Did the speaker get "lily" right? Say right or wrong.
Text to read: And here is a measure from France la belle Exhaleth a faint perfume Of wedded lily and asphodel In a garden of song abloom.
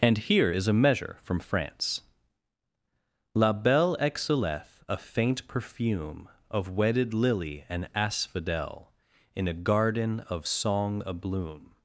right